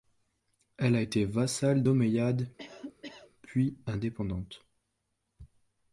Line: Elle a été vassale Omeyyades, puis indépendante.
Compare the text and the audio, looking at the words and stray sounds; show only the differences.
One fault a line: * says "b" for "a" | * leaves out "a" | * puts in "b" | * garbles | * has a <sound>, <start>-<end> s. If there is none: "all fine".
* has a cough, 2.6-3.3 s